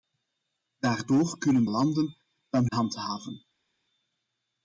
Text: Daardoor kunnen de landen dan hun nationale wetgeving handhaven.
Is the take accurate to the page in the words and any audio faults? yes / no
no